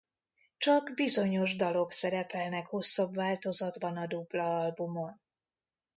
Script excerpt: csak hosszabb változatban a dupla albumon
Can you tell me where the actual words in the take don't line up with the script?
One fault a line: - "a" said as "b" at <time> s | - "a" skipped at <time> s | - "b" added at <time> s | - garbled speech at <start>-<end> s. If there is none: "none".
- "bizonyos dalok szerepelnek" added at 0.9 s